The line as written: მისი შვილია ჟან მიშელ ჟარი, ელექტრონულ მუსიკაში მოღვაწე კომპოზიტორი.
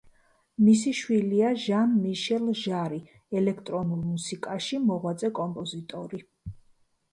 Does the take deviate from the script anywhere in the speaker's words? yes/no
no